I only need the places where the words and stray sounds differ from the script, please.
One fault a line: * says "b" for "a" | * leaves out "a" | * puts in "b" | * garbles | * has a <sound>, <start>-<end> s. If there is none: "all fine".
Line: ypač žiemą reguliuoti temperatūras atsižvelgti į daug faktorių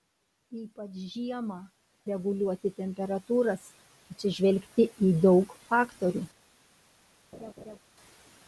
* has a laugh, 7.3-7.8 s